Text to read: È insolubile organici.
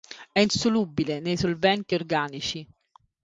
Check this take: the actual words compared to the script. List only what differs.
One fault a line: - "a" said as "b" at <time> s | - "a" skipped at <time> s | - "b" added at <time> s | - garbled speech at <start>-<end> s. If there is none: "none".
- "nei solventi" added at 1.2 s